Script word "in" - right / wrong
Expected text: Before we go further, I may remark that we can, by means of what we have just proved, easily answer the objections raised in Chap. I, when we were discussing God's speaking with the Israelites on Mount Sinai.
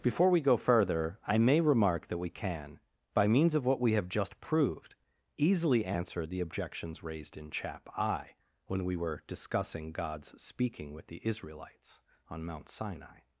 right